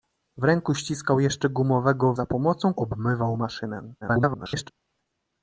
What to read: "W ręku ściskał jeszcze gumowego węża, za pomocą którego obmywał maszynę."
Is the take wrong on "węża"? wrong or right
wrong